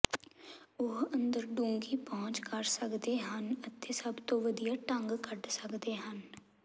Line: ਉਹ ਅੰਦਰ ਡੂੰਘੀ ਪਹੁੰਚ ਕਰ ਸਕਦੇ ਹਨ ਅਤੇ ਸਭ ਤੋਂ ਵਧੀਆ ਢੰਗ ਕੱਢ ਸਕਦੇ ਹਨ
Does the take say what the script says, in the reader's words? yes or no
yes